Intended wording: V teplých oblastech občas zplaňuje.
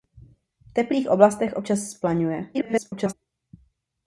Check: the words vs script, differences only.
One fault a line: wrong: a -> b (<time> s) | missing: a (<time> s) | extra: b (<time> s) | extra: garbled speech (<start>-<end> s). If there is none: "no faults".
extra: garbled speech (2.5-3.1 s)